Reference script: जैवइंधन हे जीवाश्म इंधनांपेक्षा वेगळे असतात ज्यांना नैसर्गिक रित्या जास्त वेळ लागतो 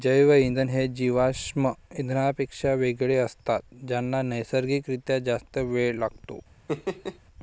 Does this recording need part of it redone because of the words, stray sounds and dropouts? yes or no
yes